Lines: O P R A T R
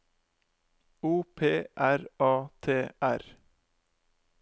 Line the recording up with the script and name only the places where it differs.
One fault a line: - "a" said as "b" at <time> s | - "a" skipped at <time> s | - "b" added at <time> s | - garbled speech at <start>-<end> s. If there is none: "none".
none